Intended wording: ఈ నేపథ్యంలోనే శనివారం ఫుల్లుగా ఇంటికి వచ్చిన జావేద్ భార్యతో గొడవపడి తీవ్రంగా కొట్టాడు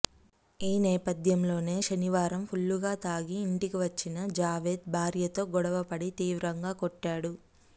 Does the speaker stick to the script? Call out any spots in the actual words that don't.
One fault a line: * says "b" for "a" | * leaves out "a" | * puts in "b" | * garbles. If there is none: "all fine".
* puts in "తాగి"